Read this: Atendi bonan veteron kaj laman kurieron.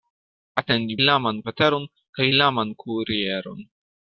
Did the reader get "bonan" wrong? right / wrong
wrong